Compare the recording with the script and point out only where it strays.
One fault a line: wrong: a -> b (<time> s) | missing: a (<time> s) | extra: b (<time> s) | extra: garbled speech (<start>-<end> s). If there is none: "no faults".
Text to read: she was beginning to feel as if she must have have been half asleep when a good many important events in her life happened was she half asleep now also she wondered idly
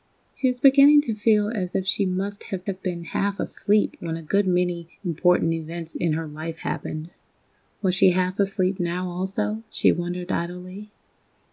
no faults